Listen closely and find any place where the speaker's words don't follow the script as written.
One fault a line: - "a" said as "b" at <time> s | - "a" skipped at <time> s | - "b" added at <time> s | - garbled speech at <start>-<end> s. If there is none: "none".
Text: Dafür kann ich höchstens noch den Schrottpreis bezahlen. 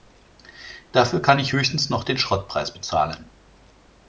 none